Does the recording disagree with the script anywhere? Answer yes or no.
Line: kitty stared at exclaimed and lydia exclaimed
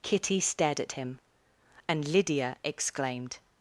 yes